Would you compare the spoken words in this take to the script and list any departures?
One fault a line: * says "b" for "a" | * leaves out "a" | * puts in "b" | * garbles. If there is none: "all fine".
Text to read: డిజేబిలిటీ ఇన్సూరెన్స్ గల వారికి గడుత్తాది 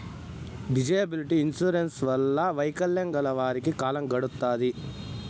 * puts in "వల్ల వైకల్యం"
* puts in "కాలం"